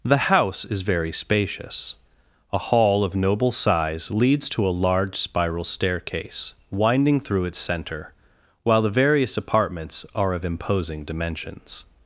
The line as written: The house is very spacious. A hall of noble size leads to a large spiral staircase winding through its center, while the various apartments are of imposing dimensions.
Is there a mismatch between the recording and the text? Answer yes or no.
no